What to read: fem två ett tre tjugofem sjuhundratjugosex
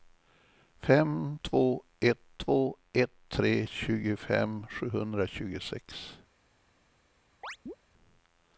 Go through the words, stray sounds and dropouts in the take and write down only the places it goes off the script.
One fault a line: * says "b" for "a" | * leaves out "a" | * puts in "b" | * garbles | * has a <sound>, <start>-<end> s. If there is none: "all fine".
* puts in "två ett"
* has a chirp, 7.4-7.8 s